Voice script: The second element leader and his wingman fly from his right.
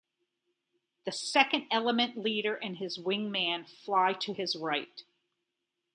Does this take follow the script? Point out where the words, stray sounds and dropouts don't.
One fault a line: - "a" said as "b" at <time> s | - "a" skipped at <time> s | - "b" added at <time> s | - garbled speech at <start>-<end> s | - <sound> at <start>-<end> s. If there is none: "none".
- "from" said as "to" at 4.1 s